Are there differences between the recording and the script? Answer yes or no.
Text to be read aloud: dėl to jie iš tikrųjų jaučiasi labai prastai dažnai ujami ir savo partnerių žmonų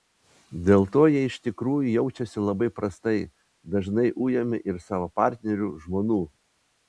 no